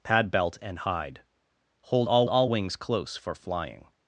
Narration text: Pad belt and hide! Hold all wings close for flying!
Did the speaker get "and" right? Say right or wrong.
right